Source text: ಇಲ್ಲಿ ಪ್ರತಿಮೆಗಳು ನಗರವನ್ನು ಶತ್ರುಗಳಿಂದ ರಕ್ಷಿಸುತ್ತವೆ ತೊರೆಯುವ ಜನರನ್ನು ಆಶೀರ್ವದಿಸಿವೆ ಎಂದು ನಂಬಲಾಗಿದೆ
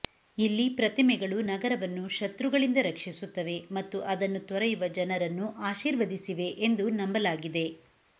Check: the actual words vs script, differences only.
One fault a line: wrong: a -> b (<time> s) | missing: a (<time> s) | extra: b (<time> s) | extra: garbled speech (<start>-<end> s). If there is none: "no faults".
extra: ಮತ್ತು ಅದನ್ನು (3.7 s)